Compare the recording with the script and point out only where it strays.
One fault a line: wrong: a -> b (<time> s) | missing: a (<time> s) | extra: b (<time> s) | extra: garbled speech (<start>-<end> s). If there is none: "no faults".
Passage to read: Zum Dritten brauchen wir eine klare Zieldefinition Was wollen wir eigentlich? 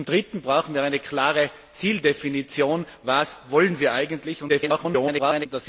extra: garbled speech (4.5-5.5 s)